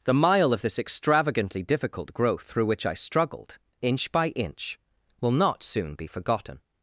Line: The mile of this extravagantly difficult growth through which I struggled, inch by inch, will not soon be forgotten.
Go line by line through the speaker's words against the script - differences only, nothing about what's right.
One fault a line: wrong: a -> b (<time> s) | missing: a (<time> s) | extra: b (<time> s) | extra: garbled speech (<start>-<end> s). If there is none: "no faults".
no faults